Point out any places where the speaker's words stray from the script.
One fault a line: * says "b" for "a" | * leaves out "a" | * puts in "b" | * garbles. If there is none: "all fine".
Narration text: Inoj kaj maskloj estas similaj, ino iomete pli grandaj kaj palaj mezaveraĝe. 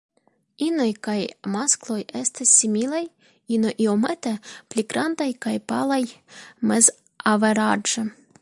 all fine